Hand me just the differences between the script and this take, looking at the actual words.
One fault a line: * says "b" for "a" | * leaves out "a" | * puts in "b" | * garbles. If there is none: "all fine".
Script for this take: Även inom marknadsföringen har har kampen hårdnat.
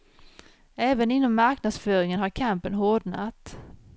* leaves out "har"